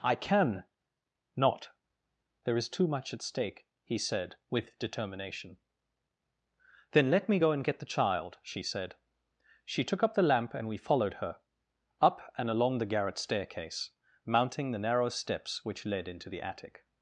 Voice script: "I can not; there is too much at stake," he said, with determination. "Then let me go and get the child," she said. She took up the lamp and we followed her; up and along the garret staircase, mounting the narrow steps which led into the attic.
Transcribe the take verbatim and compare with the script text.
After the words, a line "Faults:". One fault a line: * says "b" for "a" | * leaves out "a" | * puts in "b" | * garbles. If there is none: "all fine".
"I can not; there is too much at stake," he said, with determination. "Then let me go and get the child," she said. She took up the lamp and we followed her; up and along the garret staircase, mounting the narrow steps which led into the attic.
Faults:
all fine